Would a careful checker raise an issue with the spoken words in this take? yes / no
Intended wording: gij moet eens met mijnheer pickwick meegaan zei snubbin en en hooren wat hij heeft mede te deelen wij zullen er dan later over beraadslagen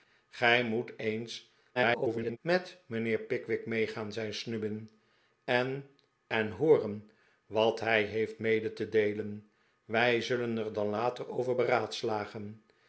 yes